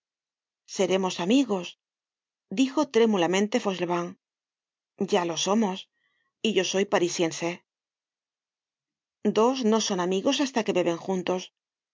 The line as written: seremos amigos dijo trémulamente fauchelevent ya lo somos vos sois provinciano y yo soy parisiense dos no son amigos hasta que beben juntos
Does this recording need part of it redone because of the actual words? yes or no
yes